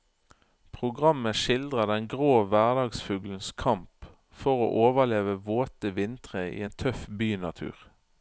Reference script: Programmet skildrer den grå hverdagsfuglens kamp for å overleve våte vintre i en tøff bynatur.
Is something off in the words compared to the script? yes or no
no